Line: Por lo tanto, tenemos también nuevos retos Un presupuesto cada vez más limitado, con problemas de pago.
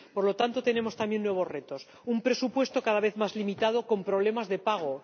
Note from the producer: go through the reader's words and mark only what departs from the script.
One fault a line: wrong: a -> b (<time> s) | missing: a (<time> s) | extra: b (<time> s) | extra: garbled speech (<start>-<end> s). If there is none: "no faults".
no faults